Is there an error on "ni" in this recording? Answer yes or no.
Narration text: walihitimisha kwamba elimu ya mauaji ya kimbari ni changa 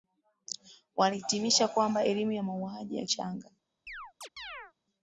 yes